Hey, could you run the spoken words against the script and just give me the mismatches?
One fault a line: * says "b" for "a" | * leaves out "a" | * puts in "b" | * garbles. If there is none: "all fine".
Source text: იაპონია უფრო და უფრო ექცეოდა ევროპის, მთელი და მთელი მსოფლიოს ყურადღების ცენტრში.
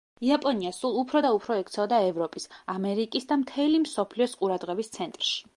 * puts in "სულ"
* says "ამერიკის" for "მთელი"